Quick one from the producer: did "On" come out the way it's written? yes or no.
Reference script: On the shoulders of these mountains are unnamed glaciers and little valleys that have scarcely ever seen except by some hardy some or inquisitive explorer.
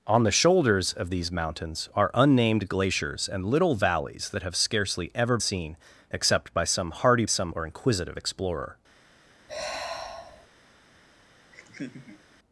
yes